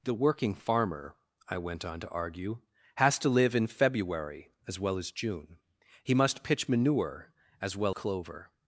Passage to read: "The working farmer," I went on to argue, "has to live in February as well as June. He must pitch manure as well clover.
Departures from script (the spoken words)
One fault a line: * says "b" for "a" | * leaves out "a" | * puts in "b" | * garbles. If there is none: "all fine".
all fine